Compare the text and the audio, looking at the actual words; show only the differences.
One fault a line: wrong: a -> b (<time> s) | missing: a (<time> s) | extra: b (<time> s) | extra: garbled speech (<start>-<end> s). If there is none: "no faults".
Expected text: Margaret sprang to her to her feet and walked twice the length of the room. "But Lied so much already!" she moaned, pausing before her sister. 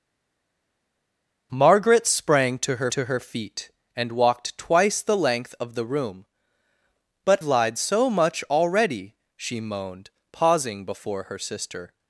no faults